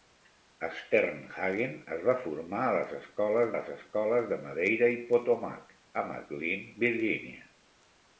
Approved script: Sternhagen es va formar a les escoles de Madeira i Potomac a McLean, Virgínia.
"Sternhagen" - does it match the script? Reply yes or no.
yes